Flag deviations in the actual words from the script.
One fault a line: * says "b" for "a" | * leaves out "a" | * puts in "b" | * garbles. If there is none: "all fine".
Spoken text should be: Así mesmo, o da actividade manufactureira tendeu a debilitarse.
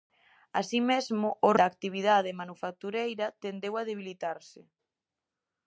all fine